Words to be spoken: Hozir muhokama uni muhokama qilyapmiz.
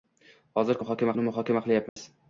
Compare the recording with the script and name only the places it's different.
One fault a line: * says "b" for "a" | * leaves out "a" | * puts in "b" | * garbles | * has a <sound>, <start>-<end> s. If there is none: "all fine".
* has a dropout, 1.9-2.0 s